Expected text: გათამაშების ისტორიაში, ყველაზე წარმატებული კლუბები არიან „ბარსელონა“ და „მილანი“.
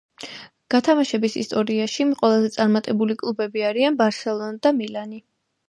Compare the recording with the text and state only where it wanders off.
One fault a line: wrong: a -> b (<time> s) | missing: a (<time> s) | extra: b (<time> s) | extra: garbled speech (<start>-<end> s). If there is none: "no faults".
no faults